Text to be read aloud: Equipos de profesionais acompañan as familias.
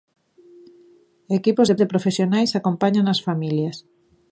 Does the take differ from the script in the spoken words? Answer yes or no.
yes